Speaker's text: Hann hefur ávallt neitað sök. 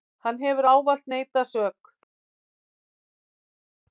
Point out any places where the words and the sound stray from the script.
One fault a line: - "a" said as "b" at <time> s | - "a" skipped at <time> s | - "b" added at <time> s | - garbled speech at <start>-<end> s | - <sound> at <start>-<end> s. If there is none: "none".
none